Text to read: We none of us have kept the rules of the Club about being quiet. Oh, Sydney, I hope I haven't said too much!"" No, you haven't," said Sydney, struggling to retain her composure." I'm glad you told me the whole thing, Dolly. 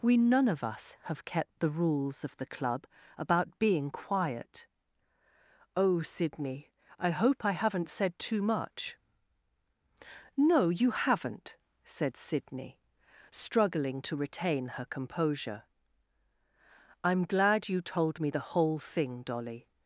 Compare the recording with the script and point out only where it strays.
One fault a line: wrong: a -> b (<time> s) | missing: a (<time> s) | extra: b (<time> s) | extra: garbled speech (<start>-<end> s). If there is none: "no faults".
no faults